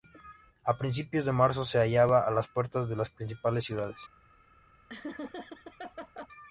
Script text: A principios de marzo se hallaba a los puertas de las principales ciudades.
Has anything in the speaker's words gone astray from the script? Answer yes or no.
yes